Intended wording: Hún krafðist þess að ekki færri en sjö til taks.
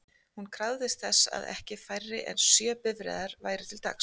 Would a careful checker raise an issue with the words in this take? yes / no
yes